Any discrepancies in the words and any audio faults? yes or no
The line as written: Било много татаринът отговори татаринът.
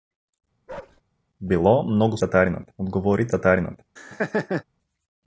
yes